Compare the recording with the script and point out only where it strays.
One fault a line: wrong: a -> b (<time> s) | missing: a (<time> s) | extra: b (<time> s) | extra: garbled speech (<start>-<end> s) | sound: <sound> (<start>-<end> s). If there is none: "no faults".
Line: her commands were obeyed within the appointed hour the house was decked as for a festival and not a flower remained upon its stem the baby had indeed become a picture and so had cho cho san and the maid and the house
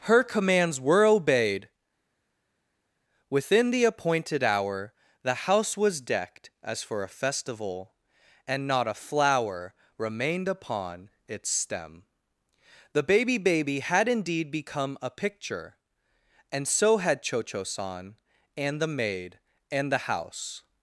extra: baby (13.4 s)